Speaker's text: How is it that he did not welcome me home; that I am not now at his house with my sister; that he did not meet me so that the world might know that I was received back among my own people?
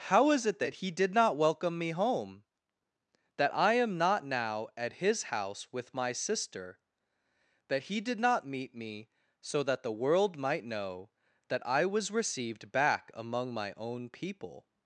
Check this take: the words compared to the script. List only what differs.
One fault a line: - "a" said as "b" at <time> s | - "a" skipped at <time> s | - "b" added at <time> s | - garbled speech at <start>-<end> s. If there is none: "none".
none